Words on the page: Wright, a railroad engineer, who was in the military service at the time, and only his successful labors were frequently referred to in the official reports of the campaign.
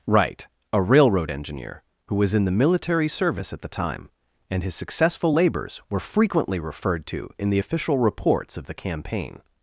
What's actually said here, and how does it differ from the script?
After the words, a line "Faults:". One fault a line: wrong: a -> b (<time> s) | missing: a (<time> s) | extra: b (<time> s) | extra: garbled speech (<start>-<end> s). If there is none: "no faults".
Wright, a railroad engineer, who was in the military service at the time, and his successful labors were frequently referred to in the official reports of the campaign.
Faults:
missing: only (4.6 s)